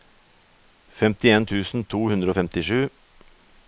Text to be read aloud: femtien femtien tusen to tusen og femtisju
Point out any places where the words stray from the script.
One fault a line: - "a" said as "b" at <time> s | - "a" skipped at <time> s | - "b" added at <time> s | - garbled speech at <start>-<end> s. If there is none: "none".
- "femtien" skipped at 1.4 s
- "tusen" said as "hundre" at 2.1 s